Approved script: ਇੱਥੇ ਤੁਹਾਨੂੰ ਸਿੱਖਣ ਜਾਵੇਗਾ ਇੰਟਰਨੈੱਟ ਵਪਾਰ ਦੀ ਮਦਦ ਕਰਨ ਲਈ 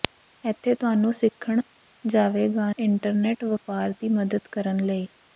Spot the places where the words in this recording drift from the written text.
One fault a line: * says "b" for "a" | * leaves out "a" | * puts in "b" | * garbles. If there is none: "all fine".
all fine